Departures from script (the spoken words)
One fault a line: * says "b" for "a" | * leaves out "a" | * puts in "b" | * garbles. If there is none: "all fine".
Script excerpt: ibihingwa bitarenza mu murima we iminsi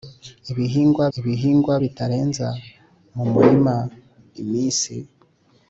* puts in "ibihingwa"
* leaves out "we"